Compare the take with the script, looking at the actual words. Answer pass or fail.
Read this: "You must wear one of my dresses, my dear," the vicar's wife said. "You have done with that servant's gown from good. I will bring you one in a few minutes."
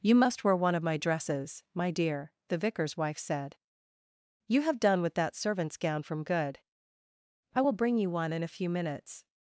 pass